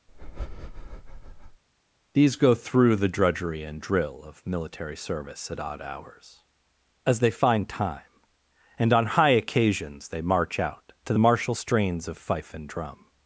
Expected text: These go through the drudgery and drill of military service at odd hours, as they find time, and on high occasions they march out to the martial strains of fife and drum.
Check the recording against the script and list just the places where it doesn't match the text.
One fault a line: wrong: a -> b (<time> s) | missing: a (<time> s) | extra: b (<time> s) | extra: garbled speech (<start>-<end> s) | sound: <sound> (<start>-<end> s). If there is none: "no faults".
sound: breath (0.1-1.6 s)